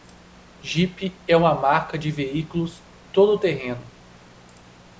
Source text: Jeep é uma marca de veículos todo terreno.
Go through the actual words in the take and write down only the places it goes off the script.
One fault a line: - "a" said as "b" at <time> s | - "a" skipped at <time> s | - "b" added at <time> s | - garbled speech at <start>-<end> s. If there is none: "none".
none